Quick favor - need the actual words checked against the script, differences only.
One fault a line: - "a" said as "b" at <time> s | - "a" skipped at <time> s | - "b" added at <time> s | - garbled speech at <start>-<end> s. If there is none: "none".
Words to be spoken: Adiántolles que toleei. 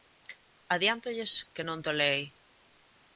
- "non" added at 1.7 s